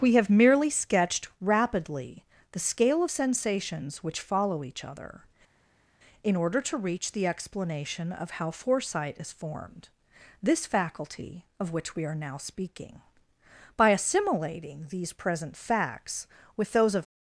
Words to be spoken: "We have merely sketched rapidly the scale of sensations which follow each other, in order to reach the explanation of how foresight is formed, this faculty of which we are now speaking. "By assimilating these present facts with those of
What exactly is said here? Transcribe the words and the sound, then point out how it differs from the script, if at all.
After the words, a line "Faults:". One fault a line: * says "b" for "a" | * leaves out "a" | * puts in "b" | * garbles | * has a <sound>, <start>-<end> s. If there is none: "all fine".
"We have merely sketched rapidly the scale of sensations which follow each other, in order to reach the explanation of how foresight is formed, this faculty of which we are now speaking. "By assimilating these present facts with those of
Faults:
all fine